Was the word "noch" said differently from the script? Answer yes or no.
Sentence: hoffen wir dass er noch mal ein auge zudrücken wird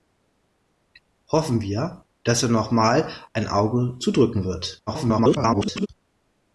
no